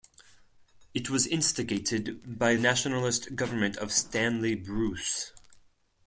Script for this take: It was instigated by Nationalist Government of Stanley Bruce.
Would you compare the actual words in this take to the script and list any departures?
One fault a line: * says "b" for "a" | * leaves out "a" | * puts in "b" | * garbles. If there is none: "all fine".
all fine